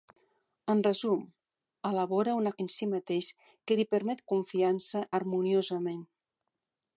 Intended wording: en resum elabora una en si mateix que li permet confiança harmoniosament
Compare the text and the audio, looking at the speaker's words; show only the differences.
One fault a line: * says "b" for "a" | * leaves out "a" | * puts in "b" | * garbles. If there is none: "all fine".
all fine